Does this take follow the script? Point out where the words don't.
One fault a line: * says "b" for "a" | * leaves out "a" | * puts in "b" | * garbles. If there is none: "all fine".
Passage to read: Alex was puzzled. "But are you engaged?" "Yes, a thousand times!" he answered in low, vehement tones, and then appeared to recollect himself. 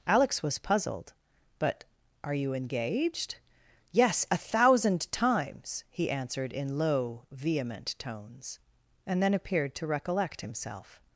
all fine